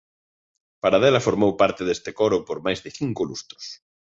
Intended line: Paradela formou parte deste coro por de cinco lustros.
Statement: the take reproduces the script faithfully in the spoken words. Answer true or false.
false